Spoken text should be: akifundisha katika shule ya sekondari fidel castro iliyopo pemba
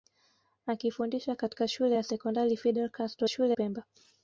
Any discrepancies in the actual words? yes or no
yes